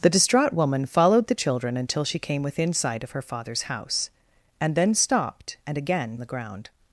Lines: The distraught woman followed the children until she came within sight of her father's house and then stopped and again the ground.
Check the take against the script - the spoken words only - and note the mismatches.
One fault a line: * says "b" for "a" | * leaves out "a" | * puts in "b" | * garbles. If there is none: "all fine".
all fine